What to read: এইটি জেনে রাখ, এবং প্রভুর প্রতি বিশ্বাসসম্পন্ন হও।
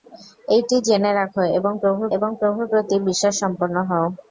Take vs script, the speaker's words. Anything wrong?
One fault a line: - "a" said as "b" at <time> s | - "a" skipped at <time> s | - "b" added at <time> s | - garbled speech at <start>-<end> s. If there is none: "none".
- "এবং প্রভুর" added at 2.1 s